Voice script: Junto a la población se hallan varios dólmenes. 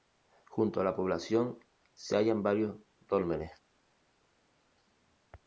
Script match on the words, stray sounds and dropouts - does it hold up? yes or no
yes